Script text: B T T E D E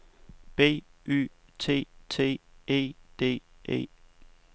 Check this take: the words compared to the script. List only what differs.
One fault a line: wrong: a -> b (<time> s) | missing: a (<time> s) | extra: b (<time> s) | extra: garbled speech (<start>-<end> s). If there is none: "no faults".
extra: Y (1.1 s)